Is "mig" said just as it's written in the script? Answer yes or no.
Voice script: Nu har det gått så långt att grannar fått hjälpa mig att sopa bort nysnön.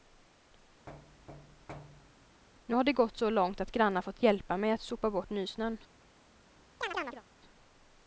yes